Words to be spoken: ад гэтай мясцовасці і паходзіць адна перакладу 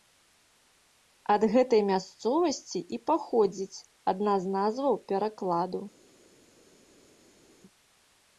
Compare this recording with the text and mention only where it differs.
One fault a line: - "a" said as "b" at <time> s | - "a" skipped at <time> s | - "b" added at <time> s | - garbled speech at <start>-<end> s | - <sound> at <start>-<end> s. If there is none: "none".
- "з назваў" added at 4.4 s